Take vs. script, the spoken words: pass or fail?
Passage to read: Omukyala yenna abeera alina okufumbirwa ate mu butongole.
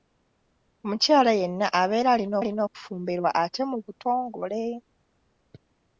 fail